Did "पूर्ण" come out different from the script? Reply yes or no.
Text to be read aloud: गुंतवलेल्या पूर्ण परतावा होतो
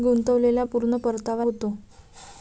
no